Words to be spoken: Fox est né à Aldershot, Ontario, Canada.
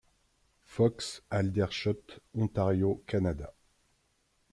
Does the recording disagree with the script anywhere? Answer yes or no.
yes